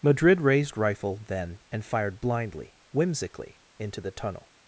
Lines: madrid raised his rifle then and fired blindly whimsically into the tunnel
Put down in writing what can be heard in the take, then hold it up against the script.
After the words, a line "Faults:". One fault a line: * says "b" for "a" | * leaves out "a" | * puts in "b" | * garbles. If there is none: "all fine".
madrid raised rifle then and fired blindly whimsically into the tunnel
Faults:
* leaves out "his"